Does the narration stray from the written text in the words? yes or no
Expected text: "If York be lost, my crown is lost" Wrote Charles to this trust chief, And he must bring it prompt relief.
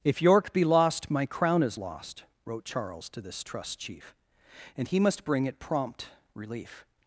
no